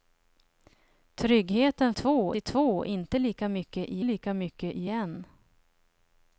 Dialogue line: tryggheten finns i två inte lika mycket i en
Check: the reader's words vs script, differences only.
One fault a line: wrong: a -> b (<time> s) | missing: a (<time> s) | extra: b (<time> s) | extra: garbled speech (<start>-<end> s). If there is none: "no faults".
wrong: finns -> två (1.9 s)
extra: lika mycket i (4.0 s)